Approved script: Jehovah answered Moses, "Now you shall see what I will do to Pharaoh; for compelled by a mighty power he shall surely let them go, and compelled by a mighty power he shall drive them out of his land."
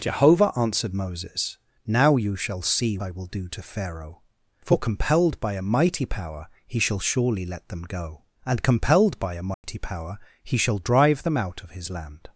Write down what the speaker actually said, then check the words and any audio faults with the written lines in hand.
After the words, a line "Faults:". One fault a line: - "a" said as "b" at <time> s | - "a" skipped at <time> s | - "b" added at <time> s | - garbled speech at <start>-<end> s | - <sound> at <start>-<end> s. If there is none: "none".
Jehovah answered Moses, "Now you shall see I will do to Pharaoh; for compelled by a mighty power he shall surely let them go, and compelled by a mighty power he shall drive them out of his land."
Faults:
- "what" skipped at 3.0 s
- dropout at 9.5-9.6 s